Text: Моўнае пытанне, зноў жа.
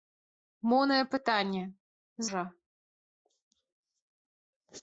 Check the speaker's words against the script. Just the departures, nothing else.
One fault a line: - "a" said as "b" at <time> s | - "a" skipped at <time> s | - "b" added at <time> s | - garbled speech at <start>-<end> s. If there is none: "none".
- "зноў" skipped at 1.6 s